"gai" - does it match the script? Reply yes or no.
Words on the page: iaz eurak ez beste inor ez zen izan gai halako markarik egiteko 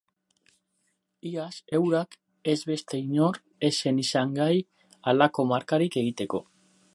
yes